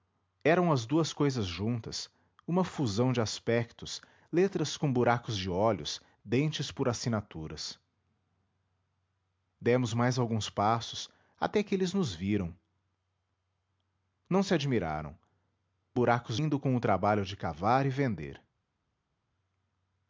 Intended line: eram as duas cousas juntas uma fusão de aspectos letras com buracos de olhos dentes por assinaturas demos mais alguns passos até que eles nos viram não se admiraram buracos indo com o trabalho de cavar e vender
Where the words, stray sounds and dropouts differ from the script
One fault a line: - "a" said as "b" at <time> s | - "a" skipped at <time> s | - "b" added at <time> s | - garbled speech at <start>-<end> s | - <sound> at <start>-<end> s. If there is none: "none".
none